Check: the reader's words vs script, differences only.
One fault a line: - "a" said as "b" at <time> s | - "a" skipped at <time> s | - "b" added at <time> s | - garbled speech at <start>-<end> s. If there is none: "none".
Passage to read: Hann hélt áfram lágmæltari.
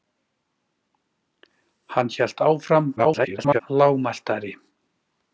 - garbled speech at 3.0-3.6 s